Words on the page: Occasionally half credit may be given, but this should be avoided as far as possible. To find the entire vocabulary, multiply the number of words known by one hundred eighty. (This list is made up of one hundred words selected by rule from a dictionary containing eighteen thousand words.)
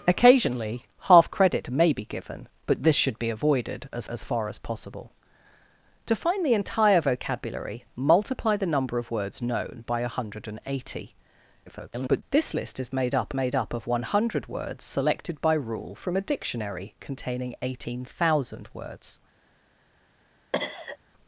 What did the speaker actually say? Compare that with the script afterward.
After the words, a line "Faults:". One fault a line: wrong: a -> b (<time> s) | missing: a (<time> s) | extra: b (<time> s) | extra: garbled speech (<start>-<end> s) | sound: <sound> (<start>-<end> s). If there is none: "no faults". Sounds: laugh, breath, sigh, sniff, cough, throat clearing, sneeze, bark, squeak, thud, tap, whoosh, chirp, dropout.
Occasionally half credit may be given, but this should be avoided as as far as possible. To find the entire vocabulary, multiply the number of words known by one hundred eighty. [garbled] (This list is made up made up of one hundred words selected by rule from a dictionary containing eighteen thousand words.)
Faults:
extra: as (4.1 s)
extra: garbled speech (11.7-12.2 s)
extra: made up (13.3 s)
sound: cough (20.5-21.0 s)